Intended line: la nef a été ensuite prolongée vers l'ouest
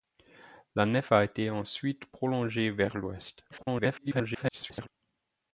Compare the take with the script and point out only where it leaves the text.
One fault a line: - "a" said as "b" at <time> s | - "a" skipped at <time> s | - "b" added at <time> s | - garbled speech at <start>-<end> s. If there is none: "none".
- garbled speech at 3.5-4.9 s